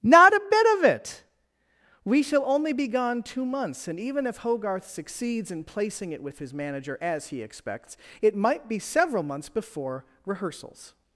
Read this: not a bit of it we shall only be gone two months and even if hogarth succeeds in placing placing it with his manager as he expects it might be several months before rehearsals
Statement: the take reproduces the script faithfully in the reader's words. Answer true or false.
false